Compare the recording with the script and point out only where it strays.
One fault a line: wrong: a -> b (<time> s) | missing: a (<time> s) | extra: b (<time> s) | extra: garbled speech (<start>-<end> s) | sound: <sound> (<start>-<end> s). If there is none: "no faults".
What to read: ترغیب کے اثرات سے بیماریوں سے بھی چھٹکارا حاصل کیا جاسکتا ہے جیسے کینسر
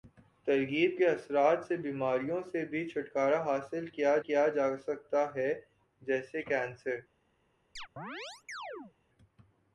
extra: کیا (4.2 s)
sound: chirp (7.8-8.9 s)